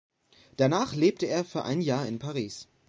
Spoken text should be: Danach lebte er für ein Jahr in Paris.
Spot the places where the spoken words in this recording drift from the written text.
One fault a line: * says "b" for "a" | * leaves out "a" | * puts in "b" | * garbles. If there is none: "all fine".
all fine